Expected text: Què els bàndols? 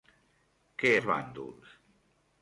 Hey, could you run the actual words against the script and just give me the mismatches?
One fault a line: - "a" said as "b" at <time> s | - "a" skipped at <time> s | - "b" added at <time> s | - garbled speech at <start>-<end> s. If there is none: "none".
none